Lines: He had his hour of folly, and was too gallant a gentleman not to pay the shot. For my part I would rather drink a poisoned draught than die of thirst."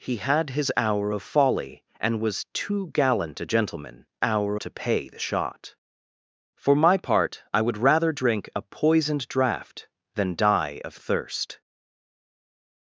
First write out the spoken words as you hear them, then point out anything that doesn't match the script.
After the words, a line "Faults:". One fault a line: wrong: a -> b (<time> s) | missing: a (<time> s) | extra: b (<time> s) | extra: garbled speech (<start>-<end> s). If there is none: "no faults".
He had his hour of folly, and was too gallant a gentleman hour to pay the shot. For my part I would rather drink a poisoned draught than die of thirst."
Faults:
wrong: not -> hour (4.2 s)